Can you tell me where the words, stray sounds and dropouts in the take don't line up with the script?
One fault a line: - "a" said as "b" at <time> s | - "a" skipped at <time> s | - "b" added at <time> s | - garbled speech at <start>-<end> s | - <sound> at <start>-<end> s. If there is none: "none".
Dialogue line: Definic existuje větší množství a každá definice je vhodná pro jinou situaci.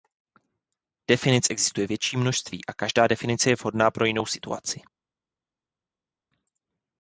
none